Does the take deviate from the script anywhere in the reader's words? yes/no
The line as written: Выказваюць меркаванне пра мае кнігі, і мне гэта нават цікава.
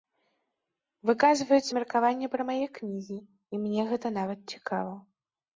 no